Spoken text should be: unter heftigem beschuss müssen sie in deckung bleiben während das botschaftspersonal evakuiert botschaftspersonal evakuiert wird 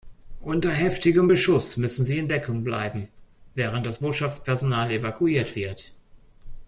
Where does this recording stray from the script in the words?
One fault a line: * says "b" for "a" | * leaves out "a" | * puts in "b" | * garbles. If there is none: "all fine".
* leaves out "botschaftspersonal evakuiert"